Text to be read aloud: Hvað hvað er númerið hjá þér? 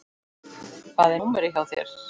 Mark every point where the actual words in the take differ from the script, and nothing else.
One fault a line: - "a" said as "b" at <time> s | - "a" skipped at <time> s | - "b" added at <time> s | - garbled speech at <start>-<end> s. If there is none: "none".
- "hvað" skipped at 1.2 s